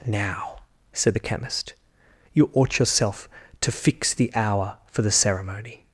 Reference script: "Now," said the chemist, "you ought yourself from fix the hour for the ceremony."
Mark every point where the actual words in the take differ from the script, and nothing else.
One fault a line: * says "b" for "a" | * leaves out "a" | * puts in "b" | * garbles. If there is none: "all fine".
* says "to" for "from"